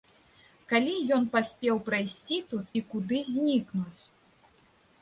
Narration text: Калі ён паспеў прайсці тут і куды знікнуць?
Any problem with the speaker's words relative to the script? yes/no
no